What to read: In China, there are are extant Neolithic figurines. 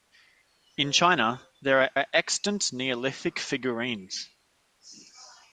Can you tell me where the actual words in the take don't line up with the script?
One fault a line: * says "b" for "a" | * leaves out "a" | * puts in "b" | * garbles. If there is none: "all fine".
all fine